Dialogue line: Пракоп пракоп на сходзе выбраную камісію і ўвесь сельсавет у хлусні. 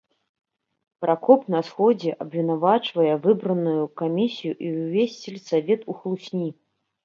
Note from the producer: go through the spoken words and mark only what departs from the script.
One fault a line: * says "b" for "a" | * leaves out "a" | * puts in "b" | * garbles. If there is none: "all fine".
* leaves out "пракоп"
* puts in "абвінавачвае"